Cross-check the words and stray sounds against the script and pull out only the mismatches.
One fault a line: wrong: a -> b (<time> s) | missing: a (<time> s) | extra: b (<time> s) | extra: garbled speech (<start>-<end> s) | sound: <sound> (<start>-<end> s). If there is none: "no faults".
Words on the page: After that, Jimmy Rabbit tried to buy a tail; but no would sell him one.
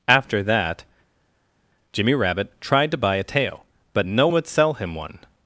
no faults